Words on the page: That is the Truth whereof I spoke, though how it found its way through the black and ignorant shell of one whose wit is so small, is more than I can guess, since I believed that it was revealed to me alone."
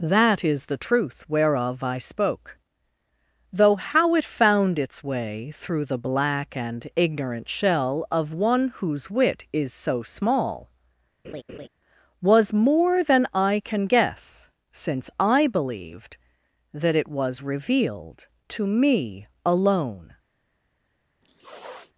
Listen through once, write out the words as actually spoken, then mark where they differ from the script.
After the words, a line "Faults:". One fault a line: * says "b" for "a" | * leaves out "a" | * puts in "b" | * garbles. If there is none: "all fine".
That is the Truth whereof I spoke, though how it found its way through the black and ignorant shell of one whose wit is so small, was more than I can guess, since I believed that it was revealed to me alone."
Faults:
* says "was" for "is"